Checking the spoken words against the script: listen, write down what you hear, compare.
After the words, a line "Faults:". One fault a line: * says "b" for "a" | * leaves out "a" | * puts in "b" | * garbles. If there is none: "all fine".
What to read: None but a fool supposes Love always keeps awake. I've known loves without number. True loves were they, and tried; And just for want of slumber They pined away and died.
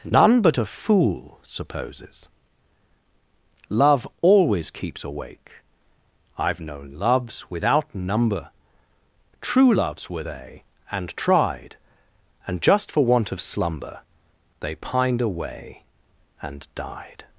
None but a fool supposes Love always keeps awake. I've known loves without number. True loves were they, and tried; And just for want of slumber They pined away and died.
Faults:
all fine